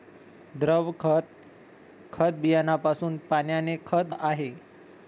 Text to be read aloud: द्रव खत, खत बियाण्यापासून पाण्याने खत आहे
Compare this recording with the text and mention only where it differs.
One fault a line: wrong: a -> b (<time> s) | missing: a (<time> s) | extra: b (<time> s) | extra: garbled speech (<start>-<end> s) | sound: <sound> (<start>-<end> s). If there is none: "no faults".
no faults